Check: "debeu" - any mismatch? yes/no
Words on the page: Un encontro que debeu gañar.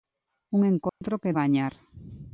yes